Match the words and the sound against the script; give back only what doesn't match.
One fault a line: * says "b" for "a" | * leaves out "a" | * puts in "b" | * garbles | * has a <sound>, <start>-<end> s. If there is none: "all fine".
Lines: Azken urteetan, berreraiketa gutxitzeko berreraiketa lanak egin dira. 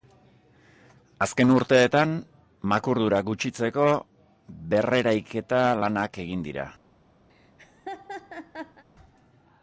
* says "makurdura" for "berreraiketa"
* has a laugh, 7.3-8.8 s